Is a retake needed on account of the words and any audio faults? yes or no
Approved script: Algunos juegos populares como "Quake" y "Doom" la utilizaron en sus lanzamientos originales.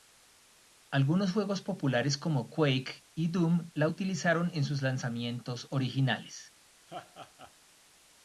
yes